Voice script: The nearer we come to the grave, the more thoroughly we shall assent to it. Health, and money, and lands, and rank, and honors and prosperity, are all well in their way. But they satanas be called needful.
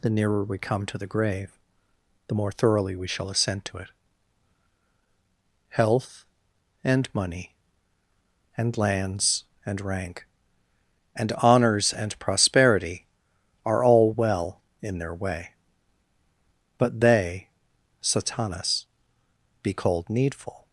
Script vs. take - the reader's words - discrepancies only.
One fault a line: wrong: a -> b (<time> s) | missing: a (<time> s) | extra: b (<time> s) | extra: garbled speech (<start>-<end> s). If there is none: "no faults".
no faults